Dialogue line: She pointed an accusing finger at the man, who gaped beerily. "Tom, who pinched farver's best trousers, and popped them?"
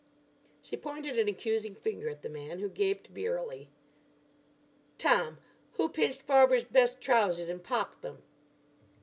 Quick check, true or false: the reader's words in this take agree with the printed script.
true